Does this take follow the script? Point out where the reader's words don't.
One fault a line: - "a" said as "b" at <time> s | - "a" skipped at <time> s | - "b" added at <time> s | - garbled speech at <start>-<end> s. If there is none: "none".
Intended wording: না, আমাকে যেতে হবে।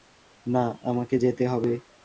none